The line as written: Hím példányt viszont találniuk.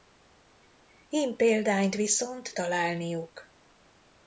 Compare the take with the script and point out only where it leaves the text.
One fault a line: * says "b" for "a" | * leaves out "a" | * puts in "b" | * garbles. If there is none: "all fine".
all fine